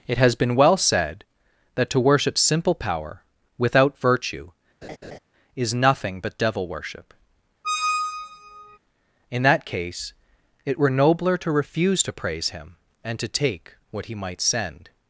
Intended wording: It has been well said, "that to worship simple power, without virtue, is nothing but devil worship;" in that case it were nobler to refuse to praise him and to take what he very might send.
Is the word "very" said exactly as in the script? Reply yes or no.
no